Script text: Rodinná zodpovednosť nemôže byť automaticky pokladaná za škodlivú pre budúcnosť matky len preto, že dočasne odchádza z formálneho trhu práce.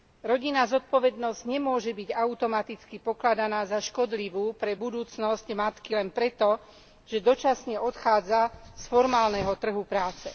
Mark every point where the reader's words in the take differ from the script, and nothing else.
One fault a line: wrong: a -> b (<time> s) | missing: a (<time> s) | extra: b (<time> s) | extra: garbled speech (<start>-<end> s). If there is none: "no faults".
no faults